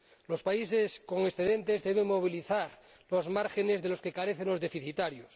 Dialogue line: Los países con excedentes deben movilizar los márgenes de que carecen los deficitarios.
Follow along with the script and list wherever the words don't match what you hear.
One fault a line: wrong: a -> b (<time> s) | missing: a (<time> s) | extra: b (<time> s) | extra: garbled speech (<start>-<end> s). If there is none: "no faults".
extra: los (3.9 s)